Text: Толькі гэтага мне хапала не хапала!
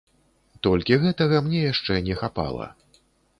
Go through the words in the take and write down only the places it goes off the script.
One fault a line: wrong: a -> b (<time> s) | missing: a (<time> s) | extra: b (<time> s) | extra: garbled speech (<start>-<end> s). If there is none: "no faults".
wrong: хапала -> яшчэ (1.7 s)